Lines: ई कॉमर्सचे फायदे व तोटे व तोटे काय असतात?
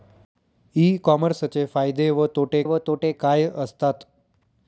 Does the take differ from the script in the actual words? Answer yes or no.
no